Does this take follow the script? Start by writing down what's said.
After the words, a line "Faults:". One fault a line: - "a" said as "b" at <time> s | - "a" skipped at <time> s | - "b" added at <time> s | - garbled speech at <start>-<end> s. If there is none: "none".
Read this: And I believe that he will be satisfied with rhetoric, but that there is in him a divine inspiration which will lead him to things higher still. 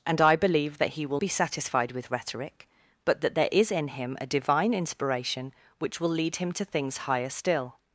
And I believe that he will be satisfied with rhetoric, but that there is in him a divine inspiration which will lead him to things higher still.
Faults:
none